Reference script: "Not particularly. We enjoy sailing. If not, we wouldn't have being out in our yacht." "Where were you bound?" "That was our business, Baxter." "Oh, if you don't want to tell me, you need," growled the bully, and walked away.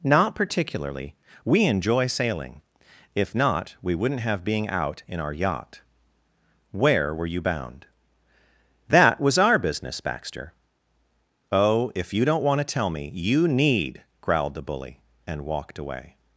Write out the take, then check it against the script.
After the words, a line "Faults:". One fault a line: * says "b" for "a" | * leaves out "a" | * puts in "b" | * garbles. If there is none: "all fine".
"Not particularly. We enjoy sailing. If not, we wouldn't have being out in our yacht." "Where were you bound?" "That was our business, Baxter." "Oh, if you don't want to tell me, you need," growled the bully, and walked away.
Faults:
all fine